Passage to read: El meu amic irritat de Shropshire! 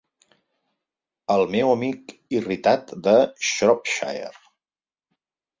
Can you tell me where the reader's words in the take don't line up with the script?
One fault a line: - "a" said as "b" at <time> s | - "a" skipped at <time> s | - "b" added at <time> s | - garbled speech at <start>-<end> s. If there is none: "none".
none